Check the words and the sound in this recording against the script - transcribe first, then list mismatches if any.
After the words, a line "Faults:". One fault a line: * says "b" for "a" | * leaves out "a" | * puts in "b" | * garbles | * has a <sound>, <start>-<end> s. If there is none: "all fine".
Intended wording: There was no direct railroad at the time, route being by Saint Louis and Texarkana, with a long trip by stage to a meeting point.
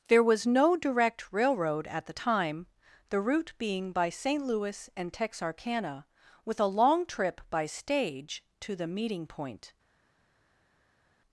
There was no direct railroad at the time, the route being by Saint Louis and Texarkana, with a long trip by stage to the meeting point.
Faults:
* puts in "the"
* says "the" for "a"